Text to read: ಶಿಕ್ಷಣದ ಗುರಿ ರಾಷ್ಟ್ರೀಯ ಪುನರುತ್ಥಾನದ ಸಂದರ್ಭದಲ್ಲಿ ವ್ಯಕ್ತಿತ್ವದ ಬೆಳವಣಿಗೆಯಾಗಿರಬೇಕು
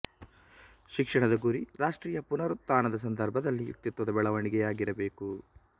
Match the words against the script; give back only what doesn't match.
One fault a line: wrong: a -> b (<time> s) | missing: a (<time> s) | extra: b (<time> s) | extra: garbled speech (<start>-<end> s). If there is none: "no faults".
no faults